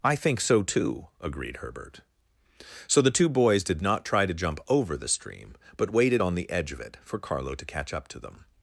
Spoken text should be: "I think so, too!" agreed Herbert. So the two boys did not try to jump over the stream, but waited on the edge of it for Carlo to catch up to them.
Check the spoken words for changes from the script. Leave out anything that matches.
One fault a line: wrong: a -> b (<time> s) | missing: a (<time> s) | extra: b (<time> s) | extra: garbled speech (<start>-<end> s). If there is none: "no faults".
no faults